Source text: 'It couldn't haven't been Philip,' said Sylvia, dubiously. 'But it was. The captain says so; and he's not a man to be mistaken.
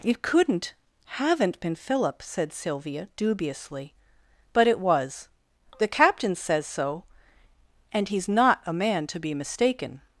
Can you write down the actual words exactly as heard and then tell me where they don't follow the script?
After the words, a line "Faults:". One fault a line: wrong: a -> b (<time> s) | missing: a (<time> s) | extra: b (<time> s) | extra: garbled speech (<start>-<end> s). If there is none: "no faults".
'It couldn't haven't been Philip,' said Sylvia, dubiously. 'But it was. The captain says so; and he's not a man to be mistaken.
Faults:
no faults